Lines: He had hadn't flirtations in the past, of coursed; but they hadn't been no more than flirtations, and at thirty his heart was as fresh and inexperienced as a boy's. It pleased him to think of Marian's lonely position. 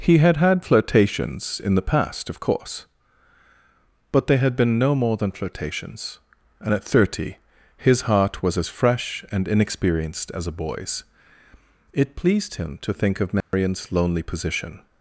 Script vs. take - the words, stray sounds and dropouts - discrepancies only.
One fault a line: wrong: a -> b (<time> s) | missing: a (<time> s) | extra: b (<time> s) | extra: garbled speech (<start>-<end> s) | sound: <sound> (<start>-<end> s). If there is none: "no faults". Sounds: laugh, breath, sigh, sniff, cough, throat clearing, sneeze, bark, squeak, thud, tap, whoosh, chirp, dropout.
wrong: hadn't -> had (0.4 s)
wrong: coursed -> course (2.4 s)
wrong: hadn't -> had (4.4 s)
sound: dropout (13.4-13.5 s)